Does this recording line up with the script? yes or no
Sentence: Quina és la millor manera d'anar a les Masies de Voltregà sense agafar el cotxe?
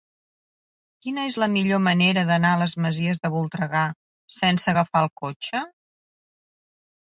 yes